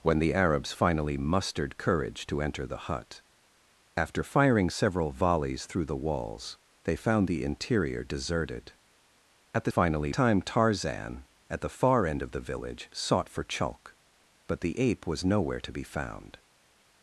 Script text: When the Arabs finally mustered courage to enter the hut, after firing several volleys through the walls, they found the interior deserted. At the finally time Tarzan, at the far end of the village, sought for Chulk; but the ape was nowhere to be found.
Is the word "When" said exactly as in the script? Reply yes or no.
yes